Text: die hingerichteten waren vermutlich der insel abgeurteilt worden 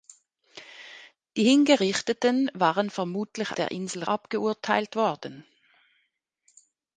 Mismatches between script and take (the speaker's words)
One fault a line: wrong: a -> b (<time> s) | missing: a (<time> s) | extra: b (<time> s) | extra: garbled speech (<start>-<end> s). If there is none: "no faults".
no faults